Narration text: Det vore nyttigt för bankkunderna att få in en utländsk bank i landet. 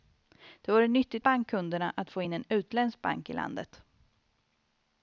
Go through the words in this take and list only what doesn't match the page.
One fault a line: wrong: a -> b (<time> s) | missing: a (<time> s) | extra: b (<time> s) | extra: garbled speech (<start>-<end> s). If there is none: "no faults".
missing: för (1.2 s)